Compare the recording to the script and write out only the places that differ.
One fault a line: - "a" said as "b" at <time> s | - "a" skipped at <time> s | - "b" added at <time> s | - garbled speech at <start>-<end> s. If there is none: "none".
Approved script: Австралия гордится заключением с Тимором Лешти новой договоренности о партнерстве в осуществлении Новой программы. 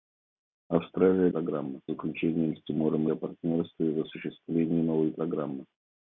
- "гордится" said as "программы" at 1.3 s
- "Лешти новой договоренности" skipped at 3.1 s